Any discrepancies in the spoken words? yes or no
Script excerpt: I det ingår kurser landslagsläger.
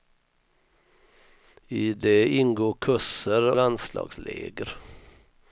no